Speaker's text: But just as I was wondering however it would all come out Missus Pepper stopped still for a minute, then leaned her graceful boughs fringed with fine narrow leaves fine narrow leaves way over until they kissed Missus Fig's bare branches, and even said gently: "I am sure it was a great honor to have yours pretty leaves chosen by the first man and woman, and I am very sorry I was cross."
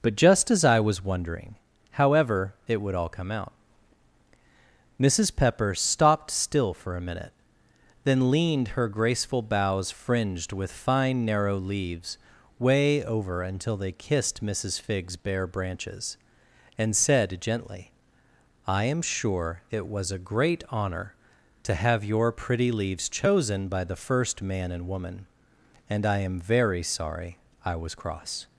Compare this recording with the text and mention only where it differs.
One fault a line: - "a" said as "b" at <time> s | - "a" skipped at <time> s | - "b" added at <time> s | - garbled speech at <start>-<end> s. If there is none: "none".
- "fine narrow leaves" skipped at 12.2 s
- "even" skipped at 16.9 s
- "yours" said as "your" at 22.0 s